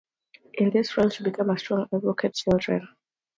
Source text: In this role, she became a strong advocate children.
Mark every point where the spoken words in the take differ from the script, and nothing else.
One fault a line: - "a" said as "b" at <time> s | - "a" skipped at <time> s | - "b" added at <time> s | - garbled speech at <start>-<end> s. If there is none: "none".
none